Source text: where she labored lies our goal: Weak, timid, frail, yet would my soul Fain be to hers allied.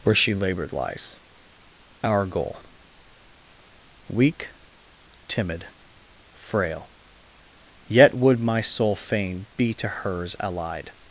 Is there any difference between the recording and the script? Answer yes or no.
no